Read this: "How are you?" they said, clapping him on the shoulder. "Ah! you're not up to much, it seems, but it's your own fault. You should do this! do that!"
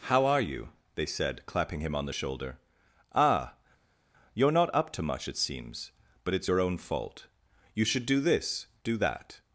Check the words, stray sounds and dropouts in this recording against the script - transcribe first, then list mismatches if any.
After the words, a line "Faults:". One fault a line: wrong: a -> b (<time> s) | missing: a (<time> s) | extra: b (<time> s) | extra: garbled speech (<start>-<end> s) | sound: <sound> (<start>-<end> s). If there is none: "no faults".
"How are you?" they said, clapping him on the shoulder. "Ah! you're not up to much, it seems, but it's your own fault. You should do this! do that!"
Faults:
no faults